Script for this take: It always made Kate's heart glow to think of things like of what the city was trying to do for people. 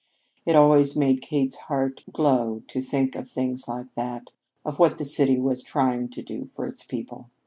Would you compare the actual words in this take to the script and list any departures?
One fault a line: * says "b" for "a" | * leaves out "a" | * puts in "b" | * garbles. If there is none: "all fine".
* puts in "that"
* puts in "its"